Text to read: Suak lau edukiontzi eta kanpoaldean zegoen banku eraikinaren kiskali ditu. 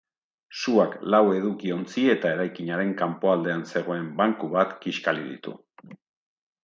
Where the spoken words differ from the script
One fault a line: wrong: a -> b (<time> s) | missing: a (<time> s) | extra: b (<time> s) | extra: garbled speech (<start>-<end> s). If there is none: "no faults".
extra: eraikinaren (2.4 s)
wrong: eraikinaren -> bat (4.6 s)